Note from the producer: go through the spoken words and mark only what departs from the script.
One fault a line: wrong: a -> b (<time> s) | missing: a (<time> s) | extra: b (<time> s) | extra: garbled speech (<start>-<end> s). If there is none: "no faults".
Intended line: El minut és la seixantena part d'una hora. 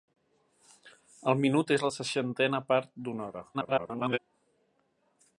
extra: garbled speech (3.5-4.2 s)